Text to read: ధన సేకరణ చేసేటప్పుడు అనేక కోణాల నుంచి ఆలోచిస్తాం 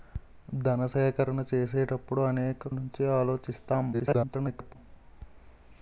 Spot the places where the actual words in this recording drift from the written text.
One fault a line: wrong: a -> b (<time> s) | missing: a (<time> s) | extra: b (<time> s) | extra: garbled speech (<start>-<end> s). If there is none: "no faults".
missing: కోణాల (2.7 s)
extra: garbled speech (3.9-4.8 s)